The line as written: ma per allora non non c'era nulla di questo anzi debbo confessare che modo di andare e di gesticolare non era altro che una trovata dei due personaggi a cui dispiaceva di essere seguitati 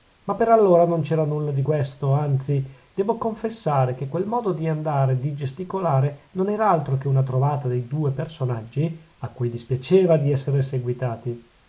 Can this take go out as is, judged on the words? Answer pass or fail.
fail